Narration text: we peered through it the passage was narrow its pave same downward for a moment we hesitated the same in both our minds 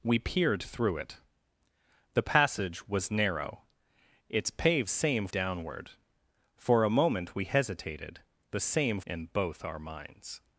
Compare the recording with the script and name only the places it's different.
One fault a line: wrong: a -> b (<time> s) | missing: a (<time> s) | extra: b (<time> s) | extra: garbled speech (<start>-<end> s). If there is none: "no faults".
no faults